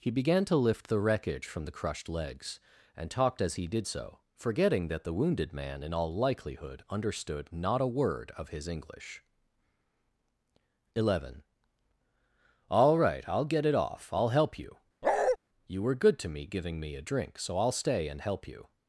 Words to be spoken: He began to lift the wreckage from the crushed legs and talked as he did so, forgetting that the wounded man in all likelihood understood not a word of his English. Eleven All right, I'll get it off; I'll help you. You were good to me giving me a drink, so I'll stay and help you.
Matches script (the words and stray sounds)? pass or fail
fail